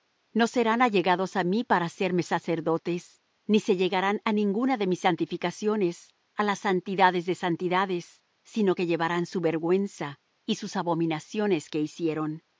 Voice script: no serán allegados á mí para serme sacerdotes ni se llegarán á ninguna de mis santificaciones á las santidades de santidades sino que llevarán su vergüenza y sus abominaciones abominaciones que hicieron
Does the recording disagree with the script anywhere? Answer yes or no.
yes